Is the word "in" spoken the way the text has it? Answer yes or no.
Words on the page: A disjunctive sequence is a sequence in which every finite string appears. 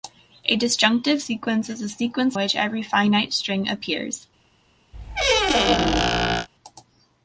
no